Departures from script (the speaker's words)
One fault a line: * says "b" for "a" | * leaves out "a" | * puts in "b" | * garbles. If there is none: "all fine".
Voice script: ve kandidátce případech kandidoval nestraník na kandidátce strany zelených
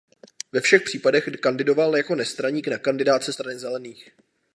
* says "všech" for "kandidátce"
* puts in "jako"